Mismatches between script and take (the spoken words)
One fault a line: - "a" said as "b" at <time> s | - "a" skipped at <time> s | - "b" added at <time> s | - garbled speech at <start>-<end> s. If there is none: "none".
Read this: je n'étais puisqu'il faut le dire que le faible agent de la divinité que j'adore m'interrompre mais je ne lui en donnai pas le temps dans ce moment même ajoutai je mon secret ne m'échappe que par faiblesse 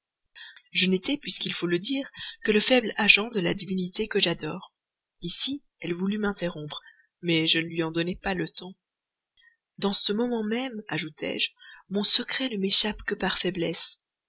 - "ici elle voulut" added at 5.2 s